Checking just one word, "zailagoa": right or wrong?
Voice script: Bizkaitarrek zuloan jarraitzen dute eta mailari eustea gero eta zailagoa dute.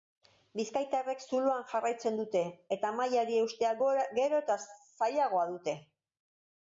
right